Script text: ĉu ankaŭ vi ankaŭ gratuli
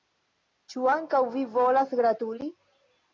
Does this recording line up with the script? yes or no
no